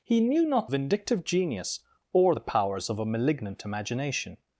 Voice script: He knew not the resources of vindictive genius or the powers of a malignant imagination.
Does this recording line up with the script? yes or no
no